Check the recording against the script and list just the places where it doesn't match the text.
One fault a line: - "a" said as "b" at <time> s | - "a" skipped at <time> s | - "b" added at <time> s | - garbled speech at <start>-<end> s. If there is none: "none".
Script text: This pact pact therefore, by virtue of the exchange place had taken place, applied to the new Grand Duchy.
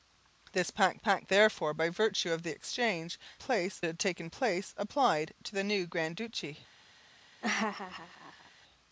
none